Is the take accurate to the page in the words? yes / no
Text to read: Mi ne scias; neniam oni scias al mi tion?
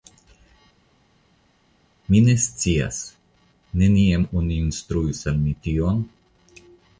no